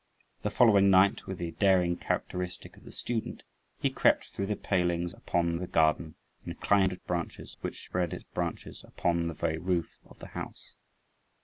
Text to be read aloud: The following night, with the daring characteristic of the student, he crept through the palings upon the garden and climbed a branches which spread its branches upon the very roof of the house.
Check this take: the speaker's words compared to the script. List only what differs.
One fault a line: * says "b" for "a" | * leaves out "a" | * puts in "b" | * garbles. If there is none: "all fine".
all fine